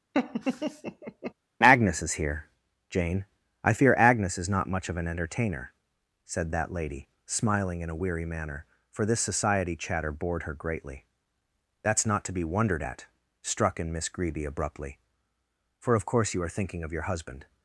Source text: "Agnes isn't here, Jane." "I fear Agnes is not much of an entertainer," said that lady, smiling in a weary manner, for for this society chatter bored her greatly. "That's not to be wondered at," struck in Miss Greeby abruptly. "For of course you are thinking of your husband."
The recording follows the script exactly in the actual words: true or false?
false